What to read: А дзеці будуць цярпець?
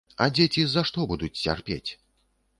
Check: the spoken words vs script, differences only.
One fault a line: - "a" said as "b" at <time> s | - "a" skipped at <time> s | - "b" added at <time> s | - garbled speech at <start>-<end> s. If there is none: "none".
- "за што" added at 0.7 s